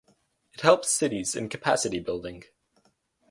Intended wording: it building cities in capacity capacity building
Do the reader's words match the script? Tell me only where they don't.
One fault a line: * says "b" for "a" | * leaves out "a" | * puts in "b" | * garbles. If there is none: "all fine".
* says "helps" for "building"
* leaves out "capacity"